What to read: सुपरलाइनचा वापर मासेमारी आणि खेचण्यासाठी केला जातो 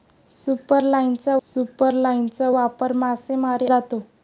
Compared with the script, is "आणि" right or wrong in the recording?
wrong